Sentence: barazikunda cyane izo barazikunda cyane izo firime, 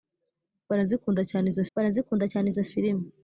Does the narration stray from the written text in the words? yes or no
no